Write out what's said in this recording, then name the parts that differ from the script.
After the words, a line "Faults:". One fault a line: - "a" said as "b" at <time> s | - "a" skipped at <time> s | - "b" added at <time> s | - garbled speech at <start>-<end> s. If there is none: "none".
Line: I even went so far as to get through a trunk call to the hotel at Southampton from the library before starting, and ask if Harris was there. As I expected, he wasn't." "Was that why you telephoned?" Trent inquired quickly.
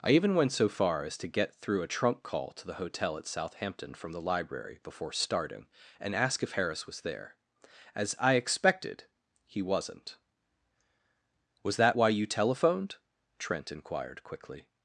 I even went so far as to get through a trunk call to the hotel at Southampton from the library before starting, and ask if Harris was there. As I expected, he wasn't." "Was that why you telephoned?" Trent inquired quickly.
Faults:
none